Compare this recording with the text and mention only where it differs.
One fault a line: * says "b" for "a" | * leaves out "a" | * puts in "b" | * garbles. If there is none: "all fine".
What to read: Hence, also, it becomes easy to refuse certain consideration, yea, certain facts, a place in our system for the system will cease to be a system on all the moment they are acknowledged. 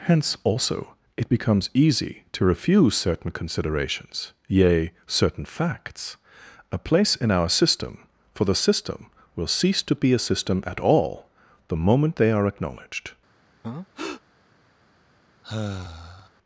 * says "considerations" for "consideration"
* says "at" for "on"